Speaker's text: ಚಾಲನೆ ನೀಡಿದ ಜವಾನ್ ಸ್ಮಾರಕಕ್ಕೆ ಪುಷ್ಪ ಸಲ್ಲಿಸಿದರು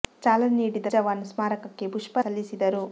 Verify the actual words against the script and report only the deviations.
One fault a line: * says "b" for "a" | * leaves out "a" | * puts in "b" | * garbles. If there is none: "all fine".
all fine